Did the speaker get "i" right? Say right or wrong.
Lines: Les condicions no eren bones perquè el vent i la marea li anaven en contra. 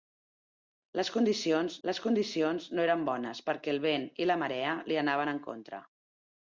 right